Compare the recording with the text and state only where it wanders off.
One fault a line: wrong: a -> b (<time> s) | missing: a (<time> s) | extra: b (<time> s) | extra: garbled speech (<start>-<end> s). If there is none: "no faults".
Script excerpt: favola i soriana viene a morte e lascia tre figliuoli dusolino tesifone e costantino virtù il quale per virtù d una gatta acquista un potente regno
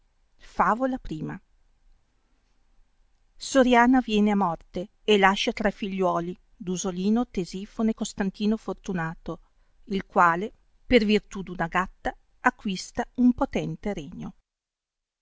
wrong: virtù -> fortunato (8.6 s)